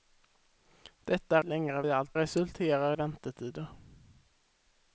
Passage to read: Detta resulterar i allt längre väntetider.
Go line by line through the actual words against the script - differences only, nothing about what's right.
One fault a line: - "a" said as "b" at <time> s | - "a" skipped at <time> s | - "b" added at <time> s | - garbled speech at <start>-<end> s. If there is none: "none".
- "resulterar" said as "längre" at 1.4 s
- "längre" said as "resulterar" at 2.2 s